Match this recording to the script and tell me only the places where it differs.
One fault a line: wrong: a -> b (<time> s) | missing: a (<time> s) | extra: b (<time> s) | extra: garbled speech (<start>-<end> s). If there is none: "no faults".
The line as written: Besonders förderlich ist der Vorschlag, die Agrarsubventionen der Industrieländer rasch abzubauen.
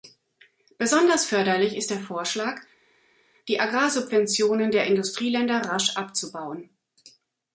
no faults